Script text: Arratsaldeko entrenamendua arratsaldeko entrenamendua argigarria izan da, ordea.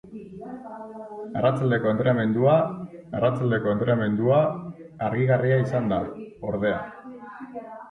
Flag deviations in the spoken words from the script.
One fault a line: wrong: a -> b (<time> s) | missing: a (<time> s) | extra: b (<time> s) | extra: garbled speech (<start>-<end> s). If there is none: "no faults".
no faults